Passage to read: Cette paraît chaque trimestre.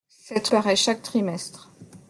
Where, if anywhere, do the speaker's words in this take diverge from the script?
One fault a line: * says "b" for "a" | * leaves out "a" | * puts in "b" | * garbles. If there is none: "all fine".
all fine